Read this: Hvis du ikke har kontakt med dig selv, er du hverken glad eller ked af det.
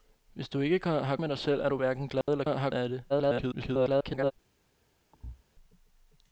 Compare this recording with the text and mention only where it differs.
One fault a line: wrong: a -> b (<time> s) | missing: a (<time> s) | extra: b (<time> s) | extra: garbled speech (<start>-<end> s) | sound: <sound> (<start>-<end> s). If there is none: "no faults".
missing: kontakt (1.1 s)
sound: dropout (2.2-2.3 s)
wrong: ked -> har (2.4 s)
extra: garbled speech (3.1-4.3 s)
sound: thud (5.1-5.4 s)